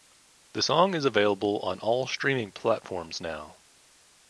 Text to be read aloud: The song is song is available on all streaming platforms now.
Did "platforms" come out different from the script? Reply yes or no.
no